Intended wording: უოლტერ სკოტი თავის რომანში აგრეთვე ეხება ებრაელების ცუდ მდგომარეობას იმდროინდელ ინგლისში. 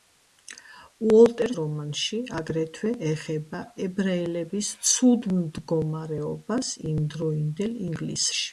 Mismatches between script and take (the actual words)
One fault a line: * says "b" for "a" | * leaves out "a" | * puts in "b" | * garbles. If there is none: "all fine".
* leaves out "სკოტი თავის"